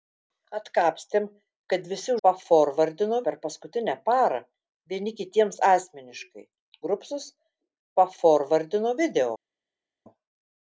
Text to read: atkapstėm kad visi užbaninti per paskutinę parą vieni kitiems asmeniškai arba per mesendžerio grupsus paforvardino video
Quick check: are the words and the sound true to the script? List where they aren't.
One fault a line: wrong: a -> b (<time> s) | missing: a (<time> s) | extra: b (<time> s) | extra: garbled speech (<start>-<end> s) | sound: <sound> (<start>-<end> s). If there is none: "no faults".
wrong: užbaninti -> paforvardino (2.3 s)
missing: arba per mesendžerio (6.4 s)